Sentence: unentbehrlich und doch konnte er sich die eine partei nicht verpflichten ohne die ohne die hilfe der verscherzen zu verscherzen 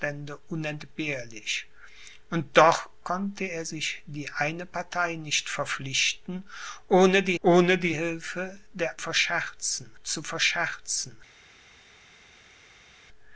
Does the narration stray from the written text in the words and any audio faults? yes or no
no